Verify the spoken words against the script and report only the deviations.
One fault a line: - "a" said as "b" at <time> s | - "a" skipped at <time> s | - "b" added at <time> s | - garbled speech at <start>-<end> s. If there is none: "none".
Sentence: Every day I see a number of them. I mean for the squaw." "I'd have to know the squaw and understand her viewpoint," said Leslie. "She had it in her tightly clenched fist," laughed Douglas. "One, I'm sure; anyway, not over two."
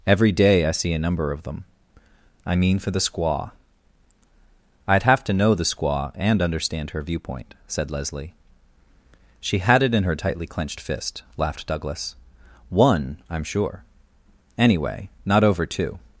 none